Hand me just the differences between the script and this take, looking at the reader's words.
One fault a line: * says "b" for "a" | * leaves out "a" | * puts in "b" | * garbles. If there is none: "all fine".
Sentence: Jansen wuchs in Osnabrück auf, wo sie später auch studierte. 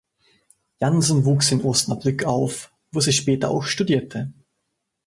all fine